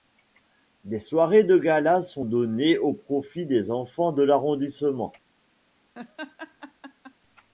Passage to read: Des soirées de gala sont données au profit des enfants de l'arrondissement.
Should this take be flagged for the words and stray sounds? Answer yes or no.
yes